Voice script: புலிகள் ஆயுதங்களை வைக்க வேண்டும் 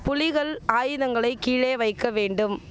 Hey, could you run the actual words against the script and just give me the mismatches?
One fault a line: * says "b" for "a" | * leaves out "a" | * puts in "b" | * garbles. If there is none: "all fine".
* puts in "கீழே"